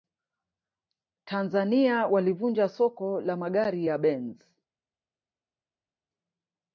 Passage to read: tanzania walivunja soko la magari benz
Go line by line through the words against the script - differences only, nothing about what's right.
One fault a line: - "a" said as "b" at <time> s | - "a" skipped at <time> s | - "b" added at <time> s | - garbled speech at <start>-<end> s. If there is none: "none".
- "ya" added at 3.8 s